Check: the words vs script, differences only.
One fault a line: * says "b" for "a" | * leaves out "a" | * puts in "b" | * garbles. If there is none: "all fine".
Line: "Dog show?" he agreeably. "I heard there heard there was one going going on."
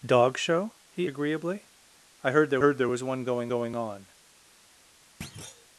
all fine